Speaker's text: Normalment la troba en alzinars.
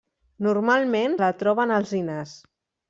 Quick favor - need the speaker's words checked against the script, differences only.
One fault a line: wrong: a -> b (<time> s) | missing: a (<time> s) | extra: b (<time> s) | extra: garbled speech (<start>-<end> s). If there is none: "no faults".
no faults